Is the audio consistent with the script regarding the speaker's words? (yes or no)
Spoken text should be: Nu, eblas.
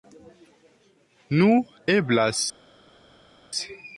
yes